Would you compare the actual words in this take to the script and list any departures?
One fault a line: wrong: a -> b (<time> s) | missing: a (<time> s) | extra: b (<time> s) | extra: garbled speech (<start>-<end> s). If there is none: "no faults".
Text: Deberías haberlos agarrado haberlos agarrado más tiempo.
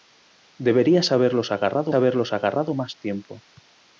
no faults